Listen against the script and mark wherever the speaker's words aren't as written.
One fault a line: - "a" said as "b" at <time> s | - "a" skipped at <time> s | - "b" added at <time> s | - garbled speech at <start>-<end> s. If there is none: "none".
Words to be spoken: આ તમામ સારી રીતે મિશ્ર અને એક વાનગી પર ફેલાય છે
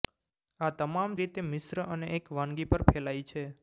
- "સારી" skipped at 1.2 s